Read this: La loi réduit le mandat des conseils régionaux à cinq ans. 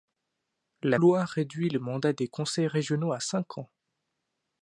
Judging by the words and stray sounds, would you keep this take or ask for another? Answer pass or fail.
pass